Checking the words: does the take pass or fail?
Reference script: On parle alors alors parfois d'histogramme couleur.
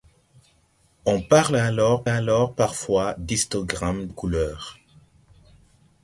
pass